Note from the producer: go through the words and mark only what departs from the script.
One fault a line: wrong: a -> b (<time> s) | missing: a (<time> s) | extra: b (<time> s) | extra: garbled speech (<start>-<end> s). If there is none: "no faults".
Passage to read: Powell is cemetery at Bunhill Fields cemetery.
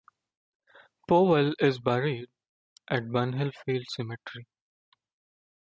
wrong: cemetery -> buried (1.8 s)